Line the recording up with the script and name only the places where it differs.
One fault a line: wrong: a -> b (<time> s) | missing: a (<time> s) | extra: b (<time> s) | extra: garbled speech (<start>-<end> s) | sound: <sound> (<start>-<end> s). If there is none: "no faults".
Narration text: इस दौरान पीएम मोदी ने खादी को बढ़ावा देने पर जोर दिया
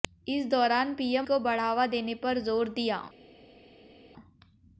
missing: मोदी ने खादी (1.3 s)